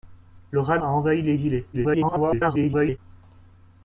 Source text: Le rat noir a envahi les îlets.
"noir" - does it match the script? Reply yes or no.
no